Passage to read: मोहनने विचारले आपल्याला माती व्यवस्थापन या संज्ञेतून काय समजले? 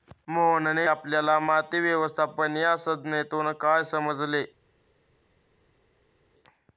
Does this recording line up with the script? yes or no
no